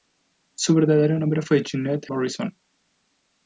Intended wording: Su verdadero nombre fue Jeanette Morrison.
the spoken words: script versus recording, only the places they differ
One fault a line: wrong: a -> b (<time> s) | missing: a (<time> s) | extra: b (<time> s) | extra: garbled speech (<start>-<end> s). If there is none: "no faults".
no faults